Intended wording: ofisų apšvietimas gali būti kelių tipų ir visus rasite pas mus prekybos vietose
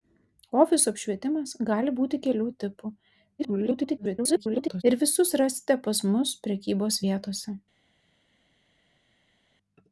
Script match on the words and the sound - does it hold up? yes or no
no